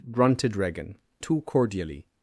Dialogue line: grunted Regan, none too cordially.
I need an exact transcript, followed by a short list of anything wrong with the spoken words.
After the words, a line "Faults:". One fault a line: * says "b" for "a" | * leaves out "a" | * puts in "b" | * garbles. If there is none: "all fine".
grunted Regan, too cordially.
Faults:
* leaves out "none"